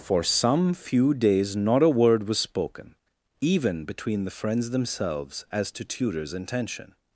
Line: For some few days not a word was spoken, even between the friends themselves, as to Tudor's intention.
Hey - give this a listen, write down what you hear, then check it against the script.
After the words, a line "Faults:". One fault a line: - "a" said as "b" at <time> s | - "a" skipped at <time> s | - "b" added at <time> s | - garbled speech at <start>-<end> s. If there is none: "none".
For some few days not a word was spoken, even between the friends themselves, as to Tudor's intention.
Faults:
none